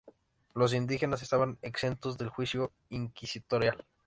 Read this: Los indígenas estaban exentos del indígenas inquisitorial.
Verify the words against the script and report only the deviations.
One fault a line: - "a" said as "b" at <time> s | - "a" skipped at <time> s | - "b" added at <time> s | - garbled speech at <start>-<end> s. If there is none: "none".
- "indígenas" said as "juicio" at 2.3 s